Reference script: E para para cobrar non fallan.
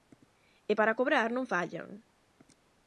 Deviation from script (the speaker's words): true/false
true